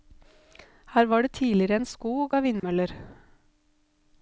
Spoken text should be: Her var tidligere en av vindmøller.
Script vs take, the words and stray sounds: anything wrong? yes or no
yes